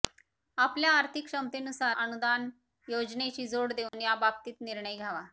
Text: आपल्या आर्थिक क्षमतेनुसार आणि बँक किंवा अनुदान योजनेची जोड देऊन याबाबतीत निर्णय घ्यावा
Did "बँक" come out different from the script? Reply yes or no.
yes